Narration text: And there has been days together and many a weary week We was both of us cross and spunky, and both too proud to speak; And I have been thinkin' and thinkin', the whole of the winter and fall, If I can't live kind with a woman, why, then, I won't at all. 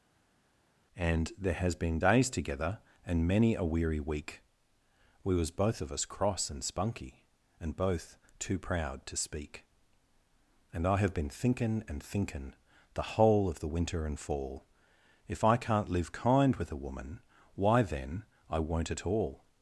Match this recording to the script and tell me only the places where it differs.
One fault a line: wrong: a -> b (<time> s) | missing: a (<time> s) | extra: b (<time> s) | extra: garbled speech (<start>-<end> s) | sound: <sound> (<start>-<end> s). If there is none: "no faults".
no faults